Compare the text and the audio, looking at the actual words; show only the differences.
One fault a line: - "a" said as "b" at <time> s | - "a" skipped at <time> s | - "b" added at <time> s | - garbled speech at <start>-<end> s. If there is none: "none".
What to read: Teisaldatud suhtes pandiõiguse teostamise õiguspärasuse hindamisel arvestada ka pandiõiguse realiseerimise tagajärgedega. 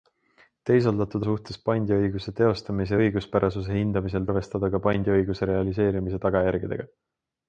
none